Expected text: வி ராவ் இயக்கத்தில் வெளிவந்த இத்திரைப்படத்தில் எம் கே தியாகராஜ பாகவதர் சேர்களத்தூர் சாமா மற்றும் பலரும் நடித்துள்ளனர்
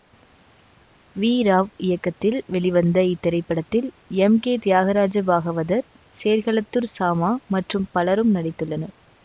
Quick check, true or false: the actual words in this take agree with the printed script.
true